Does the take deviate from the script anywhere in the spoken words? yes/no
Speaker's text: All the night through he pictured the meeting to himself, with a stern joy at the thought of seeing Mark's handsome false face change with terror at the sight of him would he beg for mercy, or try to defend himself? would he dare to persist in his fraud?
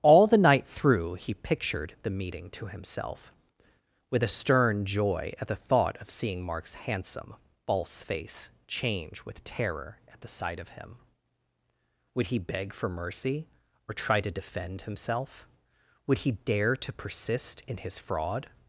no